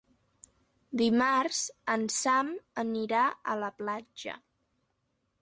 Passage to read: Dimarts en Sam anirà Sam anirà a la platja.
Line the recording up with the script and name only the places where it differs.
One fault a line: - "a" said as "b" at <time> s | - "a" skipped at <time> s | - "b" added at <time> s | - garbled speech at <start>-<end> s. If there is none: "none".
- "Sam anirà" skipped at 3.3 s